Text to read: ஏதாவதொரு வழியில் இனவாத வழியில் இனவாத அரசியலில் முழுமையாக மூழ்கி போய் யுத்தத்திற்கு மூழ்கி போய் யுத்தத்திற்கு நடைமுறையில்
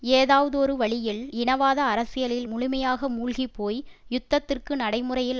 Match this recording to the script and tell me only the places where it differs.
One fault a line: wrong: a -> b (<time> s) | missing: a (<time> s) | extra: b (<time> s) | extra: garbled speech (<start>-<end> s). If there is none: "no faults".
missing: வழியில் இனவாத (1.8 s)
missing: மூழ்கி போய் யுத்தத்திற்கு (4.7 s)